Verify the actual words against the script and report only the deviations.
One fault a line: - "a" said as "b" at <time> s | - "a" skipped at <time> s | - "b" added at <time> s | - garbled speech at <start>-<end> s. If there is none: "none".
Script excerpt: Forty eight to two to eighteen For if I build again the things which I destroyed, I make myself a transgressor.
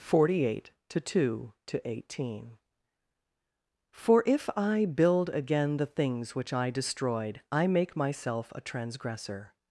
none